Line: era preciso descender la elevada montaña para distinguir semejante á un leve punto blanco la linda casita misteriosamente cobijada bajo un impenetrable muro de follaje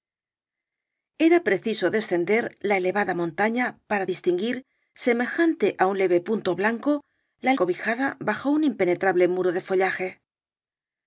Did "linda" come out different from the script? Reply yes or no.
yes